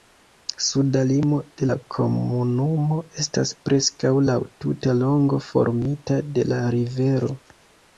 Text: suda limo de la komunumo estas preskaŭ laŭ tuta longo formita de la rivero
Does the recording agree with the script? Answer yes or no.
yes